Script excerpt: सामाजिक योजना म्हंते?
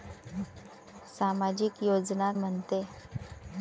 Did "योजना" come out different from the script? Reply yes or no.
no